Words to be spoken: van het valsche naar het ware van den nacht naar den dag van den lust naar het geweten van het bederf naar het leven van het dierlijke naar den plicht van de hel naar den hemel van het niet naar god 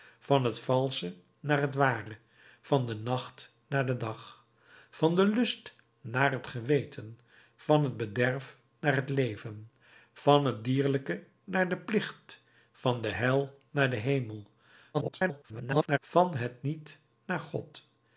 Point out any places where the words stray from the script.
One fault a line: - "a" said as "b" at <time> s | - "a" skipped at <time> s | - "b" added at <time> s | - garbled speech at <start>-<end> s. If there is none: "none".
- garbled speech at 14.9-16.0 s